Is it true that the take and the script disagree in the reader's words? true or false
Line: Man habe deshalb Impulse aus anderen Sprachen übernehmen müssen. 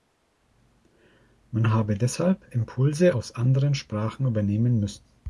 false